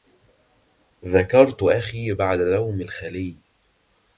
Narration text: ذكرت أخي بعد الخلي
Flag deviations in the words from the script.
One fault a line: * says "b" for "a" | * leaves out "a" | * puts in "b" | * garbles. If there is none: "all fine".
* puts in "نوم"